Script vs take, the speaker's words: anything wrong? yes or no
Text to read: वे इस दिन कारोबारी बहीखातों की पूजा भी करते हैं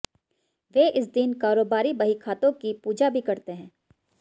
no